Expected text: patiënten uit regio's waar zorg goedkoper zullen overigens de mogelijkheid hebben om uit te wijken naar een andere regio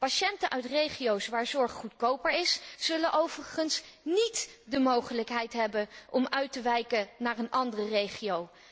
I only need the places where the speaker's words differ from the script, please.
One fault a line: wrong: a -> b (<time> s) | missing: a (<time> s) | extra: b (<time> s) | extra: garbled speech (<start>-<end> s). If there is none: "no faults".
extra: is (2.3 s)
extra: niet (4.0 s)